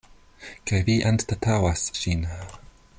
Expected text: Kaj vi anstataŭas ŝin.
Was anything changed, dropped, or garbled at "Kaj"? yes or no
no